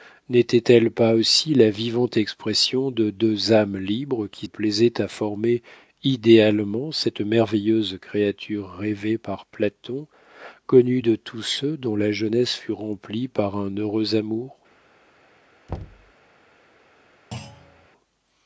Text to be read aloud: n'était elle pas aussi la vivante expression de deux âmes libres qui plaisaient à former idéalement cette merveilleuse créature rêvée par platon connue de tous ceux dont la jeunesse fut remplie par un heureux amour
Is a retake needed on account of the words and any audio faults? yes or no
yes